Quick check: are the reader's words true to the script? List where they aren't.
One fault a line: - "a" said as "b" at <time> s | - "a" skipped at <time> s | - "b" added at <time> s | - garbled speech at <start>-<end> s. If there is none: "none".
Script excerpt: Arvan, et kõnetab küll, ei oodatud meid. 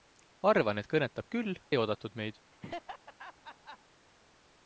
none